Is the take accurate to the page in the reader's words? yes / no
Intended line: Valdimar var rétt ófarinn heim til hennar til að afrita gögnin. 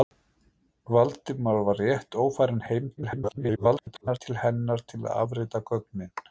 no